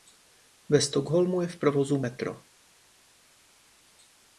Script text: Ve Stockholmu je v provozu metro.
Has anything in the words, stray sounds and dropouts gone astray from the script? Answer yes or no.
no